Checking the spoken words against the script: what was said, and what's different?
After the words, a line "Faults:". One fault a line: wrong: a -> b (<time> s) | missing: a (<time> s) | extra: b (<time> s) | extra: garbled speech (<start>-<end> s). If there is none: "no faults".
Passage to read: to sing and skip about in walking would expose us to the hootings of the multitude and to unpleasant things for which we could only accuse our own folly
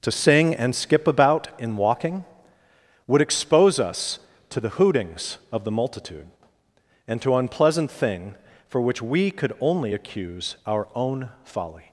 to sing and skip about in walking would expose us to the hootings of the multitude and to unpleasant thing for which we could only accuse our own folly
Faults:
wrong: things -> thing (7.9 s)